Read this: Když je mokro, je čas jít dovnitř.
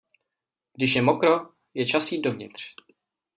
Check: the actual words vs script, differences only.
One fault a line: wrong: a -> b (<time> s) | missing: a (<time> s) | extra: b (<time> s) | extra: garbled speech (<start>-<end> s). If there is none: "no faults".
no faults